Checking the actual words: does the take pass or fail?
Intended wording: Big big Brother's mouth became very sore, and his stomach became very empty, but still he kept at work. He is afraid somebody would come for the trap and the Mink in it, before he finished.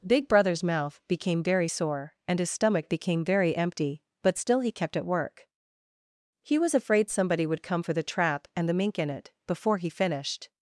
fail